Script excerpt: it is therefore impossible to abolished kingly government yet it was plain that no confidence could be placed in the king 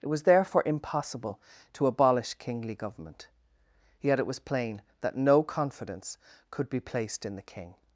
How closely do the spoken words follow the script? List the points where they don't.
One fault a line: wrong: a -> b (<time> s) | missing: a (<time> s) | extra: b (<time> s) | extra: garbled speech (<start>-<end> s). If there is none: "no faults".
wrong: is -> was (0.1 s)
wrong: abolished -> abolish (1.9 s)